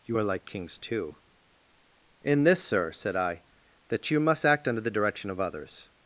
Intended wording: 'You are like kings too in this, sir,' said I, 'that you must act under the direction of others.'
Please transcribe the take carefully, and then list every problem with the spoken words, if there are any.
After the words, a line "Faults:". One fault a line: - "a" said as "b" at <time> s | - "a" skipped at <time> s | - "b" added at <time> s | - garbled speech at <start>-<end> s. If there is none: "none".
'You are like kings too in this, sir,' said I, 'that you must act under the direction of others.'
Faults:
none